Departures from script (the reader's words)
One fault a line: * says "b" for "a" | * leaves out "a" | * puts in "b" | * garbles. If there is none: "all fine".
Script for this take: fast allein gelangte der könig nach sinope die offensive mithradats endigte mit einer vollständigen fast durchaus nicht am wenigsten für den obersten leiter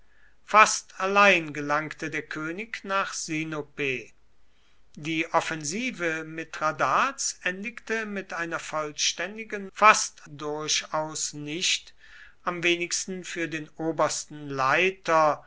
all fine